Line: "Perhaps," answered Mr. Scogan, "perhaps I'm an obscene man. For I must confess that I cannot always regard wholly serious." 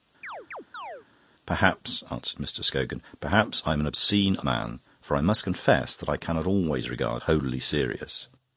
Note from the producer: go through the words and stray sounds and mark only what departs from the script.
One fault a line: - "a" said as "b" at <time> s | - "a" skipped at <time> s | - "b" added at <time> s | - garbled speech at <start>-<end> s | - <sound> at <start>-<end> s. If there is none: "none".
- chirp at 0.2-1.1 s